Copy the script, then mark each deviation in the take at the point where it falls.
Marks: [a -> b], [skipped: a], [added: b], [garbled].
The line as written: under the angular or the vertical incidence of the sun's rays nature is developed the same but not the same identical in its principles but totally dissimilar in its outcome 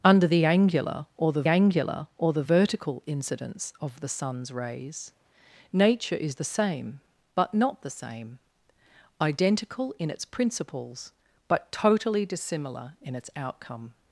under the angular or the [added: angular or the] vertical incidence of the sun's rays nature is [skipped: developed] the same but not the same identical in its principles but totally dissimilar in its outcome